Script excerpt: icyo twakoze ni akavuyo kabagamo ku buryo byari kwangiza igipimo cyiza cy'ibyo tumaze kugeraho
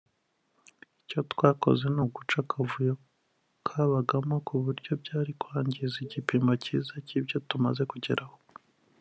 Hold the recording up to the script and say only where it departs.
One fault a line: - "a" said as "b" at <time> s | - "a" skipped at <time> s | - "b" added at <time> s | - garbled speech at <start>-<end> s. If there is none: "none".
- "uguca" added at 2.0 s